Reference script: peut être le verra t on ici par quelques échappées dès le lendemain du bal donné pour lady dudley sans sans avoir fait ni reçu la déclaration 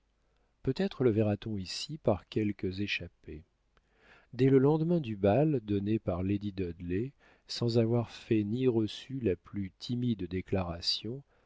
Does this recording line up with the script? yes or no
no